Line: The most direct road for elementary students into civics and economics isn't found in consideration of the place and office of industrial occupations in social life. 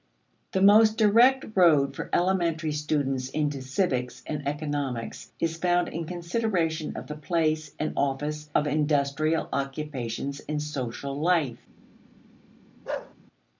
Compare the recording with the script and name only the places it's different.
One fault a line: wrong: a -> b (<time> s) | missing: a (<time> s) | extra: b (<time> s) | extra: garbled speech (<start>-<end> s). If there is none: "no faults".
wrong: isn't -> is (5.4 s)